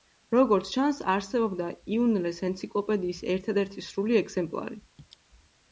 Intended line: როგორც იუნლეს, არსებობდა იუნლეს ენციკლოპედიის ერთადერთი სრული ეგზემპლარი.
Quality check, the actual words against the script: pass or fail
fail